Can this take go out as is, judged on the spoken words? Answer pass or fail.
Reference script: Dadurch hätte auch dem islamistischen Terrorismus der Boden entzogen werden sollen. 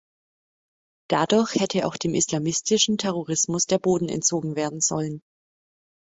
pass